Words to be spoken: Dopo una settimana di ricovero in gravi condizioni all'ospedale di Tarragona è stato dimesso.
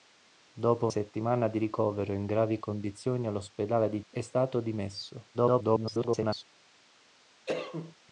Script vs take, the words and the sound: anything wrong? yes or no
yes